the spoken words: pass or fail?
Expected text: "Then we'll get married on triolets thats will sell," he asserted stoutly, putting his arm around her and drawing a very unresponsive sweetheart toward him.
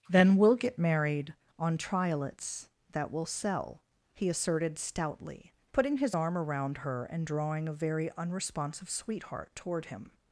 fail